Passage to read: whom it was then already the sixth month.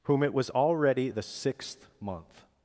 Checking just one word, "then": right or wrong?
wrong